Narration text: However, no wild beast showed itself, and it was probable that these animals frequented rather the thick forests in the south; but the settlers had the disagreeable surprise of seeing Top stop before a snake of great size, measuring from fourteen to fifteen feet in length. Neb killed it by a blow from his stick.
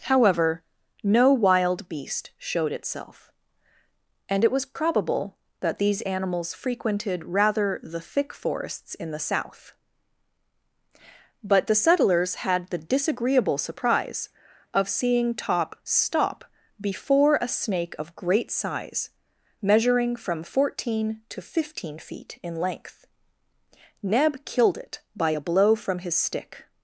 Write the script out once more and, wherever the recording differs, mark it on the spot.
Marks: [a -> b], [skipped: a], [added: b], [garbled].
However, no wild beast showed itself, and it was probable that these animals frequented rather the thick forests in the south; but the settlers had the disagreeable surprise of seeing Top stop before a snake of great size, measuring from fourteen to fifteen feet in length. Neb killed it by a blow from his stick.